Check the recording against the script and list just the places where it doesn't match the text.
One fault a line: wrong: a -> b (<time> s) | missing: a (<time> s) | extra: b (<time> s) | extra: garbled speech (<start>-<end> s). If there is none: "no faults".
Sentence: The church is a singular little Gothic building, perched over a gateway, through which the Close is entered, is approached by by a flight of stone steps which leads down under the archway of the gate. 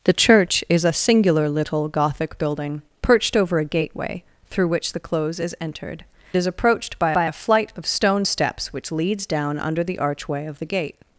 no faults